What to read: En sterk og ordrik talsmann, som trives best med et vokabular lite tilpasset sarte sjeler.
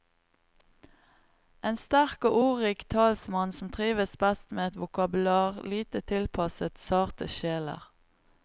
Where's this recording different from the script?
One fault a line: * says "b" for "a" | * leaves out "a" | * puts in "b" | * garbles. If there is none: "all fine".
all fine